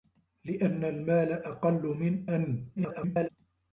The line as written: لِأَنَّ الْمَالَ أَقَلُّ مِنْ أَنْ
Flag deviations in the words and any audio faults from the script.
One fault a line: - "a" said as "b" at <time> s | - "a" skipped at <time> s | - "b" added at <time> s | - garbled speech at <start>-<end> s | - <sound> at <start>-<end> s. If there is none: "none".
- garbled speech at 2.8-3.3 s